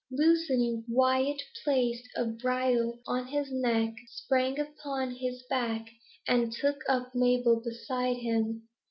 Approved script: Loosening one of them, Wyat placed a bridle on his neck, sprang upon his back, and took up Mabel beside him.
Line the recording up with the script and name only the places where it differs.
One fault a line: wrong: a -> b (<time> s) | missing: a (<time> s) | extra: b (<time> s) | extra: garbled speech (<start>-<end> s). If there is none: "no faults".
missing: one of them (0.8 s)